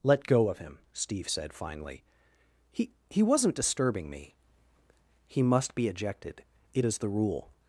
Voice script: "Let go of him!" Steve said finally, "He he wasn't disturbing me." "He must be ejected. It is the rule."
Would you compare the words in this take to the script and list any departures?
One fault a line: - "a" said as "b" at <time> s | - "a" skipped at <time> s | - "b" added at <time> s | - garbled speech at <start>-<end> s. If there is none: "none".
none